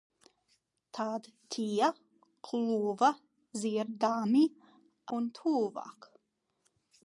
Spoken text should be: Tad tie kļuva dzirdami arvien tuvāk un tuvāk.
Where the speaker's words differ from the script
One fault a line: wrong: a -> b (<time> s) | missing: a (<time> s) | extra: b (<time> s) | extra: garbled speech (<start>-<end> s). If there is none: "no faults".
missing: arvien tuvāk (4.4 s)